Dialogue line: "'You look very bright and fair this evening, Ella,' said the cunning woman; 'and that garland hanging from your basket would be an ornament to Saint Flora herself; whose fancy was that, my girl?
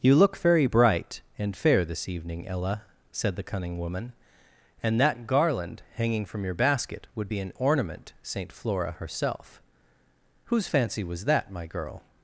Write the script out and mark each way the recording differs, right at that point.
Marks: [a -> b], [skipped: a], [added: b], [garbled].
"'You look very bright and fair this evening, Ella,' said the cunning woman; 'and that garland hanging from your basket would be an ornament [skipped: to] Saint Flora herself; whose fancy was that, my girl?